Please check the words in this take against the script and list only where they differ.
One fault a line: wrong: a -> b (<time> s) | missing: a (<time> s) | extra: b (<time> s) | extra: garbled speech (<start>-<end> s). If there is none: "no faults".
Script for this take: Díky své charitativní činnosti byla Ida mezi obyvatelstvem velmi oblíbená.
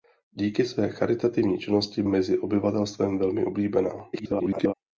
missing: byla Ida (2.0 s)
extra: garbled speech (4.1-4.7 s)